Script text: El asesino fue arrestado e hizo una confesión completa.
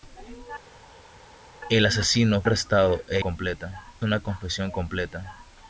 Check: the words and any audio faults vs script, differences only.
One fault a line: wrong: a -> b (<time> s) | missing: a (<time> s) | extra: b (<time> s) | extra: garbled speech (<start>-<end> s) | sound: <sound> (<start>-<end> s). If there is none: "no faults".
missing: fue (2.4 s)
wrong: hizo -> completa (3.2 s)